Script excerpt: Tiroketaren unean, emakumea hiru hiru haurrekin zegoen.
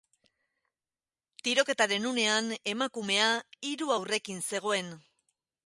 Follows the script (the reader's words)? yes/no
no